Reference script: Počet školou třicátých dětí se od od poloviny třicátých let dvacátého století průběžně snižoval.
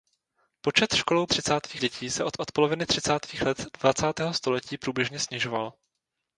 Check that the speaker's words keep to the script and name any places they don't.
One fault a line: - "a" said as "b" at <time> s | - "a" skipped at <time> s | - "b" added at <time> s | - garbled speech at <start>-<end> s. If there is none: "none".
none